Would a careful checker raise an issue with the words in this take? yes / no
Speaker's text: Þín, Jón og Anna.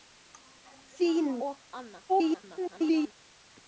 yes